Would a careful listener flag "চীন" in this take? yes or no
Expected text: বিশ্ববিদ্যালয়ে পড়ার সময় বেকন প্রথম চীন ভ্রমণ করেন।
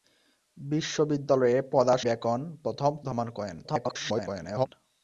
yes